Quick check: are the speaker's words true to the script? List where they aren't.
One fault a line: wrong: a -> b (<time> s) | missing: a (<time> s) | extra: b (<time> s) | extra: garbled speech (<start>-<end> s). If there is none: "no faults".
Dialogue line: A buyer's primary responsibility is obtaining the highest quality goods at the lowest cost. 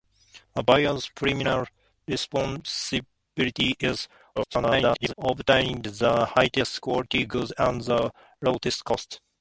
extra: garbled speech (4.4-5.1 s)